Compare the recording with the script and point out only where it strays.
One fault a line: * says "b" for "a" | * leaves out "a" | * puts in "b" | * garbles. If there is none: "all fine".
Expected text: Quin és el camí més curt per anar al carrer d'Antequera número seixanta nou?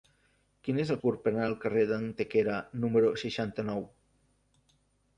* leaves out "camí més"